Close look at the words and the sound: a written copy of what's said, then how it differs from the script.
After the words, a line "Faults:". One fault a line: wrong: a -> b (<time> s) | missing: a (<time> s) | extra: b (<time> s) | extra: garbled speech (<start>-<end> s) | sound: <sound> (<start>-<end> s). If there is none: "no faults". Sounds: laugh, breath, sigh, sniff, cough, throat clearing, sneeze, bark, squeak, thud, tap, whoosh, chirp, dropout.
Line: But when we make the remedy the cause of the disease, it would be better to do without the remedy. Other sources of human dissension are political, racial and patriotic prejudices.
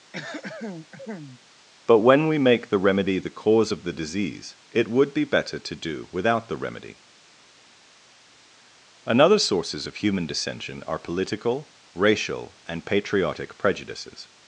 But when we make the remedy the cause of the disease, it would be better to do without the remedy. Another sources of human dissension are political, racial and patriotic prejudices.
Faults:
sound: throat clearing (0.1-1.4 s)
wrong: Other -> Another (9.0 s)